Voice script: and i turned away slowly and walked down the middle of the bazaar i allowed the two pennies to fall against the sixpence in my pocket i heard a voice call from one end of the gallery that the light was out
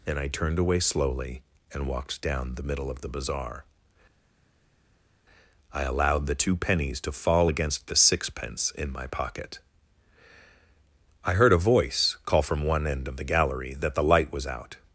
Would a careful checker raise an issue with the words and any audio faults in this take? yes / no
no